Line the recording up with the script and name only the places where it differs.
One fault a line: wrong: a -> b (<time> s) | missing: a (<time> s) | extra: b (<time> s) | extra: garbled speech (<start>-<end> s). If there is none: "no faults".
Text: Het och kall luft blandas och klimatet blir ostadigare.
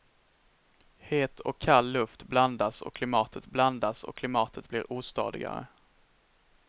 extra: blandas och klimatet (3.5 s)